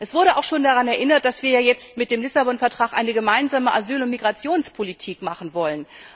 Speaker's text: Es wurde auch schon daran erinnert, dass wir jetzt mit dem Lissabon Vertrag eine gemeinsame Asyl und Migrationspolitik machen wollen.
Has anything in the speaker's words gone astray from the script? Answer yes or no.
no